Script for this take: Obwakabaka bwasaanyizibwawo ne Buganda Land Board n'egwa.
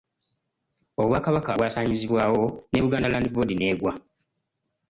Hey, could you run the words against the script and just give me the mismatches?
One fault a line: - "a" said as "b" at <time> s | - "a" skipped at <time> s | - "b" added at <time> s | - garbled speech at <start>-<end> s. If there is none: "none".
none